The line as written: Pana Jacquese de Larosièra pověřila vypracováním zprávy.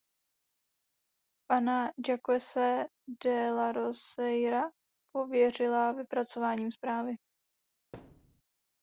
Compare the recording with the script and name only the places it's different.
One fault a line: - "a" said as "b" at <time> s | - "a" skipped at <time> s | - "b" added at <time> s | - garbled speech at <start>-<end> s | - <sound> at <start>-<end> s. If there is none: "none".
- thud at 7.9-8.4 s